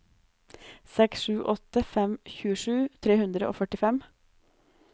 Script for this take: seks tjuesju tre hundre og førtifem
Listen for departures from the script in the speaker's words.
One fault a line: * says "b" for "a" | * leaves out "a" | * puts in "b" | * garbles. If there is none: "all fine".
* puts in "sju åtte fem"